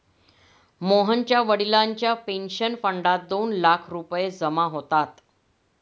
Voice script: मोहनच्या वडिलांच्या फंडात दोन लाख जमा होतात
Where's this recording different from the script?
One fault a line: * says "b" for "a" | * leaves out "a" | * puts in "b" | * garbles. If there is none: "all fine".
* puts in "पेन्शन"
* puts in "रुपये"